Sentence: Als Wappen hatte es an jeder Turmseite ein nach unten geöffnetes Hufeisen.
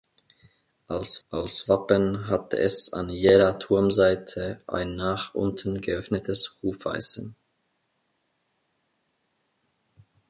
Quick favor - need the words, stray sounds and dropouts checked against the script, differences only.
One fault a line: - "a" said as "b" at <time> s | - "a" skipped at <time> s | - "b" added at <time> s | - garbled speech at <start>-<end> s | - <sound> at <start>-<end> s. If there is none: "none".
- "als" added at 1.3 s